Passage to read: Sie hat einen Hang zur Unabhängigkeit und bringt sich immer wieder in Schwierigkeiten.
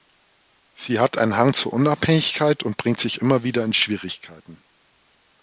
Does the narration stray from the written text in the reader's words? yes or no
no